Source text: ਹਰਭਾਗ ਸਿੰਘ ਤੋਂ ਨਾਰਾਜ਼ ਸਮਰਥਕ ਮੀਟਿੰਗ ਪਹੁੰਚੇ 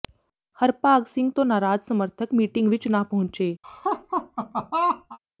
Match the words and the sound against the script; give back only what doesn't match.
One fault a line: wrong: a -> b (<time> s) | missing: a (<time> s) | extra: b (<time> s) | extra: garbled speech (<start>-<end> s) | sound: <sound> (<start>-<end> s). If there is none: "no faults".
extra: ਵਿੱਚ ਨਾ (2.7 s)
sound: laugh (3.6-5.2 s)